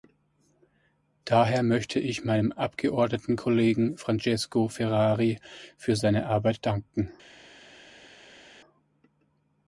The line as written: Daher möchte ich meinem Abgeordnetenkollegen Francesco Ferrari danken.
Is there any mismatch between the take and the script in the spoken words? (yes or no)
yes